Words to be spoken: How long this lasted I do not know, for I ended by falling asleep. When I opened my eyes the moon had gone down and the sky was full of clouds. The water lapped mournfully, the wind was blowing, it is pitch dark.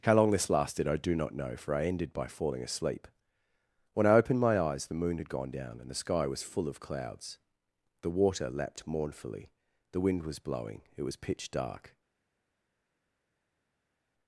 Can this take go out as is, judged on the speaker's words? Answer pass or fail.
fail